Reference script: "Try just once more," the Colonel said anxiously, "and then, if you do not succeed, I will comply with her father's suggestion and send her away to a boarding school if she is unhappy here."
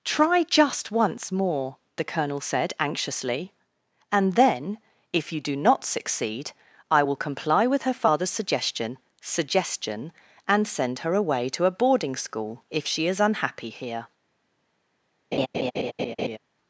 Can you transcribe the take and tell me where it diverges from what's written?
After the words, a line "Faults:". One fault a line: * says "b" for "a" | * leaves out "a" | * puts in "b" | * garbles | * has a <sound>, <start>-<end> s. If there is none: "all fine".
"Try just once more," the Colonel said anxiously, "and then, if you do not succeed, I will comply with her father's suggestion suggestion and send her away to a boarding school if she is unhappy here."
Faults:
* puts in "suggestion"
* has a laugh, 15.3-16.4 s